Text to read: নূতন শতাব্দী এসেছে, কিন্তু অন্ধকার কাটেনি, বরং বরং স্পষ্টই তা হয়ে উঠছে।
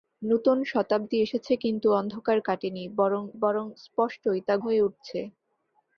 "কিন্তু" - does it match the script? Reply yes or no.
yes